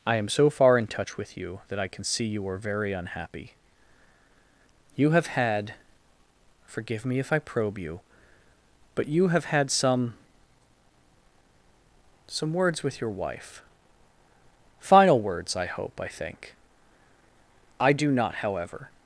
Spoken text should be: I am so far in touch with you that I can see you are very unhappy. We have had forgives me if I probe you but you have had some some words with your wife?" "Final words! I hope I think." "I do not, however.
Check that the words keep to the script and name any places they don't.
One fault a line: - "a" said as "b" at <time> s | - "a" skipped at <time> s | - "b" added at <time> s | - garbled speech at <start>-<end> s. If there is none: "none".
- "We" said as "You" at 5.0 s
- "forgives" said as "forgive" at 6.7 s